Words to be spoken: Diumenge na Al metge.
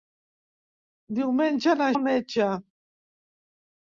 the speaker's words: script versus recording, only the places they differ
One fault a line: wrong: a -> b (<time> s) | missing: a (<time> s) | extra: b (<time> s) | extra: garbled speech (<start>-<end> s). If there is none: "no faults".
no faults